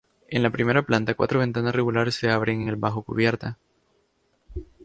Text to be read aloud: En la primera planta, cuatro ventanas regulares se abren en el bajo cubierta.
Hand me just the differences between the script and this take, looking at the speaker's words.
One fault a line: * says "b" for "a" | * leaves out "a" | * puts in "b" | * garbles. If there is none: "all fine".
all fine